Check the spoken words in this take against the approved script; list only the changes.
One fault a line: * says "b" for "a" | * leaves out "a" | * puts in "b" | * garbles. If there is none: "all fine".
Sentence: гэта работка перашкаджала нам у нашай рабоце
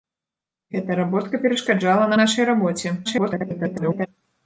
* leaves out "нам"
* garbles